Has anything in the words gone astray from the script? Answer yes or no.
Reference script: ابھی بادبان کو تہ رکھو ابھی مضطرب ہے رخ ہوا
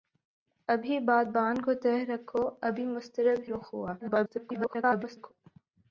yes